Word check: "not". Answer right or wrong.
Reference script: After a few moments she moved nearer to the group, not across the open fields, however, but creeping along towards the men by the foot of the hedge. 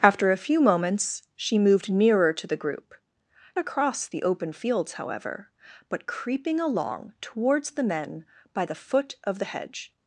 wrong